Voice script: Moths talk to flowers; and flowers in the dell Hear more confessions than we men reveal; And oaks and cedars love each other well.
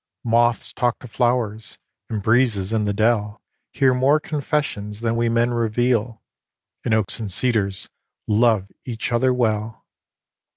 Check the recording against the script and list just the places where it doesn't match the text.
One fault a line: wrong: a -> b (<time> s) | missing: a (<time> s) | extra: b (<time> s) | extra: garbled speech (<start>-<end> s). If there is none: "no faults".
wrong: flowers -> breezes (2.2 s)